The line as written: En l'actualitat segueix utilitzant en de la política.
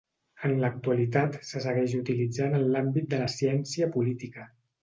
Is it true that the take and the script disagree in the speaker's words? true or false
true